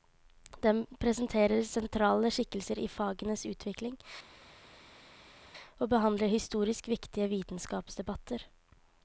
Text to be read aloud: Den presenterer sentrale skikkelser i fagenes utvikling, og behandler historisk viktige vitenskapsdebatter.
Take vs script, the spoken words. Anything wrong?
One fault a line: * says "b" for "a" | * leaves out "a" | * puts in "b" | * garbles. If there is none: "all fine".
all fine